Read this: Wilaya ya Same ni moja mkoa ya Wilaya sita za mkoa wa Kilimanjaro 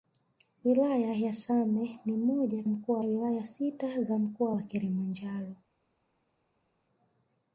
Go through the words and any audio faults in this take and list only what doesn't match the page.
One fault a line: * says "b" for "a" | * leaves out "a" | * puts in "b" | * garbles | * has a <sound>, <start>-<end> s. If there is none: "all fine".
all fine